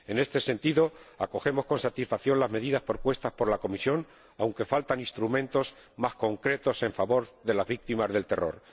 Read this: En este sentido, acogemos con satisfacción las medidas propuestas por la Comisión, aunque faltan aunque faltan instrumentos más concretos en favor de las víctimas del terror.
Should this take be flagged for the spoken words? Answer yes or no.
yes